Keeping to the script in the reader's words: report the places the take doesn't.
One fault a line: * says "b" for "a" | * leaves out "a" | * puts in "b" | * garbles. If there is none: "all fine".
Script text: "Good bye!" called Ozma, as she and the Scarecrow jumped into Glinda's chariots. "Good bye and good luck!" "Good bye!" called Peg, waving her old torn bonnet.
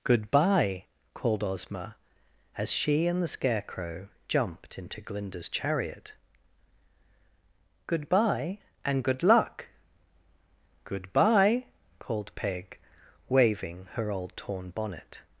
* says "chariot" for "chariots"